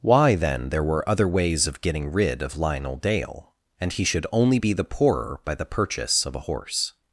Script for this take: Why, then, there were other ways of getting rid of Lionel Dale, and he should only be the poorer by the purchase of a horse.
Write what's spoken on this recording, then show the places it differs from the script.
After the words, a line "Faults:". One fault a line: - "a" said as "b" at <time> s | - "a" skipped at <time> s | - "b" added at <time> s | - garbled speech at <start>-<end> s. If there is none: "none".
Why, then, there were other ways of getting rid of Lionel Dale, and he should only be the poorer by the purchase of a horse.
Faults:
none